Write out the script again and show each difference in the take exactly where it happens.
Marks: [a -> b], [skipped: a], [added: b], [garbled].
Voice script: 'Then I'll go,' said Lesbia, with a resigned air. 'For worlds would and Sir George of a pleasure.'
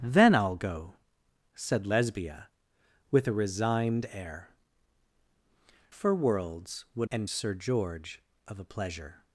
'Then I'll go,' said Lesbia, with a resigned air. 'For worlds would and Sir George of a pleasure.'